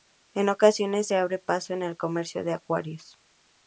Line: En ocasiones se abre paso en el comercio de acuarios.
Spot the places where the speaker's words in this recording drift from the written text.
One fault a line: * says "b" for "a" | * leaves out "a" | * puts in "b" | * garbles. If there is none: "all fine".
all fine